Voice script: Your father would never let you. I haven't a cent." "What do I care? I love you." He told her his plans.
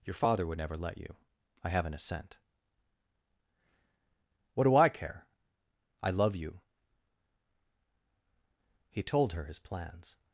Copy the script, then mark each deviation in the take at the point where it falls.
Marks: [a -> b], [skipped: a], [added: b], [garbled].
Your father would never let you. I haven't a cent." "What do I care? I love you." He told her his plans.